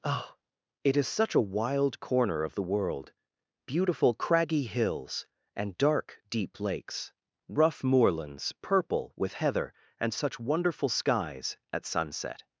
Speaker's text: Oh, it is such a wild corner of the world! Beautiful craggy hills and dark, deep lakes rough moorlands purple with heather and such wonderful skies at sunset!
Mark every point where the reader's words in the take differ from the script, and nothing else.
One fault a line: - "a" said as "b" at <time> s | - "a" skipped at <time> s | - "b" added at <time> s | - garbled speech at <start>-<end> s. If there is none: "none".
none